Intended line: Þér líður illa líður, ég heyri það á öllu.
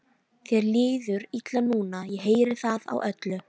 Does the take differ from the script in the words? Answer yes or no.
yes